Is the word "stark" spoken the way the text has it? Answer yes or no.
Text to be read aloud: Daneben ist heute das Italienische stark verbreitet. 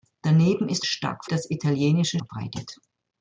no